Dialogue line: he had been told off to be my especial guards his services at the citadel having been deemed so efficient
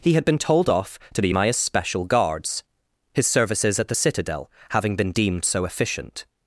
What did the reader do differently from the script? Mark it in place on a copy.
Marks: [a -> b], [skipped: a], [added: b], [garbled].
he had been told off to be my especial guards his services at the citadel having been deemed so efficient